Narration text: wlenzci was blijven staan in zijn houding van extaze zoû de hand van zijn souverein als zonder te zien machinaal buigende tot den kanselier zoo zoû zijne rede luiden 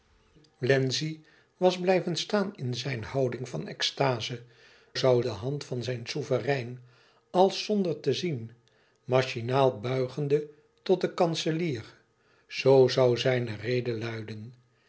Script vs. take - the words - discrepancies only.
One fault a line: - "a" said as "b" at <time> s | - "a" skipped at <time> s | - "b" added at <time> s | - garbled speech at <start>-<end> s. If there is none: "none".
none